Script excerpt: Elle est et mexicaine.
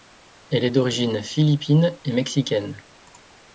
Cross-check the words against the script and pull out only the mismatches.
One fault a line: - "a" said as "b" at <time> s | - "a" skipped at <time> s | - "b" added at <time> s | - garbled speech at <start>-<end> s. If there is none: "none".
- "d'origine philippine" added at 0.7 s